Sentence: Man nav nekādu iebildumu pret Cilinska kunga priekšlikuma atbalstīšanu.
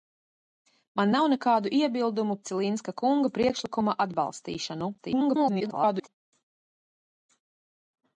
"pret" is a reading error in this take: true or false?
true